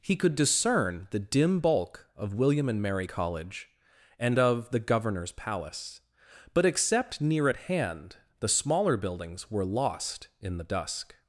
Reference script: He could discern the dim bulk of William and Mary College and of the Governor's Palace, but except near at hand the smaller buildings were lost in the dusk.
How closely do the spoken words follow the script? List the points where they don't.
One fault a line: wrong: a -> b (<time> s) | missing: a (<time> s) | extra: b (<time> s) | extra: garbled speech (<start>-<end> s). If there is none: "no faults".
no faults